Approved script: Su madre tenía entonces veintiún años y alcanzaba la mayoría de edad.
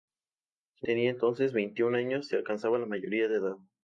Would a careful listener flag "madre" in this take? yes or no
yes